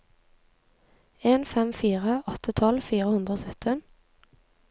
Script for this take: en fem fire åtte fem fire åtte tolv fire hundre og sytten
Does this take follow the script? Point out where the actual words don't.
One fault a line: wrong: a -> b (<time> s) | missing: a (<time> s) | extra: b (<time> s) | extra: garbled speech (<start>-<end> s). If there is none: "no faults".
missing: fem fire åtte (2.5 s)